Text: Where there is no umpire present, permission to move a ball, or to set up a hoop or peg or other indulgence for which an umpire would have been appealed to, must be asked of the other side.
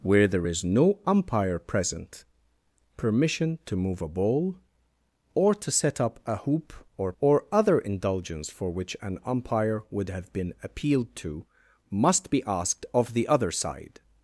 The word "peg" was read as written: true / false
false